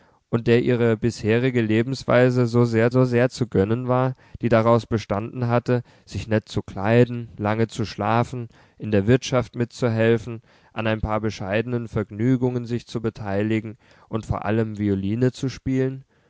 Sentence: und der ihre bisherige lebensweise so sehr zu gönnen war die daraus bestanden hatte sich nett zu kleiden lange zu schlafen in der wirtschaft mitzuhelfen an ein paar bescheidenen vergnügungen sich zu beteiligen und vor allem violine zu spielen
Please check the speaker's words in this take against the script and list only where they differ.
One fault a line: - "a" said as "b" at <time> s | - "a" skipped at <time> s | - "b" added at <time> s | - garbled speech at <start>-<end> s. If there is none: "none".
- "so sehr" added at 2.9 s